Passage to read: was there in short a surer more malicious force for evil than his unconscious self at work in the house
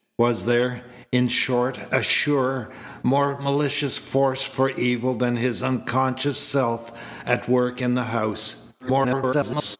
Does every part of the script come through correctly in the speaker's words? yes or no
no